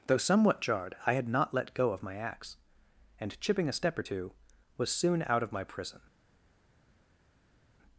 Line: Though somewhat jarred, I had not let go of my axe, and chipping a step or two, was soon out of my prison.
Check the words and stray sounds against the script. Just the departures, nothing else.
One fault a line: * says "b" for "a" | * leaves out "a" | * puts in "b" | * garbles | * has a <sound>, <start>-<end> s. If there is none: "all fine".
all fine